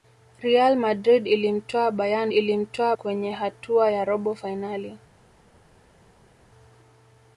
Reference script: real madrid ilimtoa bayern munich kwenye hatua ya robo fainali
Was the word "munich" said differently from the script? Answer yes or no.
yes